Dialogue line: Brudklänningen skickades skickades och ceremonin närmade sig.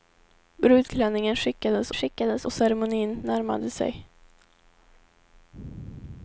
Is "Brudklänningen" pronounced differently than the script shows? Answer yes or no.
no